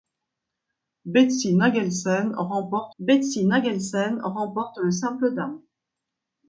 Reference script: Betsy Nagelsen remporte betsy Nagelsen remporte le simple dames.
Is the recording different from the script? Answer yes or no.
no